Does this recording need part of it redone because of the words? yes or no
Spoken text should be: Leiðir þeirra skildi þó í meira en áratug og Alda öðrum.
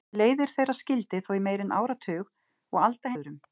no